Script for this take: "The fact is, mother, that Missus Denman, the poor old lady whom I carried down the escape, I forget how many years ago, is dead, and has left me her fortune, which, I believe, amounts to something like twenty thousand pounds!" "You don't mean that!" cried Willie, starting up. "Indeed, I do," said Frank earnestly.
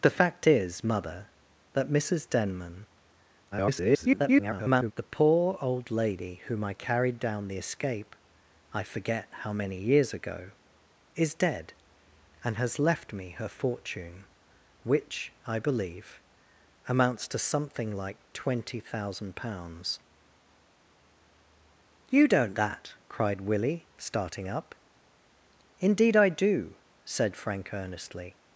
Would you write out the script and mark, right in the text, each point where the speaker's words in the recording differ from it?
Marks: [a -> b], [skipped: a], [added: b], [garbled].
"The fact is, mother, that Missus Denman, [garbled] the poor old lady whom I carried down the escape, I forget how many years ago, is dead, and has left me her fortune, which, I believe, amounts to something like twenty thousand pounds!" "You don't [skipped: mean] that!" cried Willie, starting up. "Indeed, I do," said Frank earnestly.